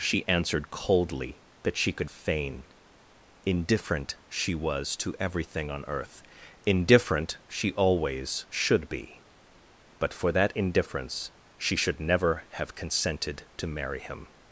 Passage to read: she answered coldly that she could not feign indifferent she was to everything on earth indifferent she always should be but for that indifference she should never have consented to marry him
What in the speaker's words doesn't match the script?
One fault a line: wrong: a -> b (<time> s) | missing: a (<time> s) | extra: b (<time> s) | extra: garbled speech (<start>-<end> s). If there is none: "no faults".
missing: not (2.1 s)